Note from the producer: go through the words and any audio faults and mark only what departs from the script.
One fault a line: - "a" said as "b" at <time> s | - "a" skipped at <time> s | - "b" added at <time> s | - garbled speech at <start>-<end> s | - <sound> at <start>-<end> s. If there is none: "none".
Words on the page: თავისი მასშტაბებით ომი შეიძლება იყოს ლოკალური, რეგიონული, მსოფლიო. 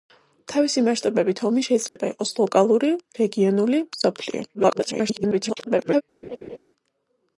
- dropout at 1.9-2.0 s
- garbled speech at 4.5-6.0 s
- laugh at 6.2-6.6 s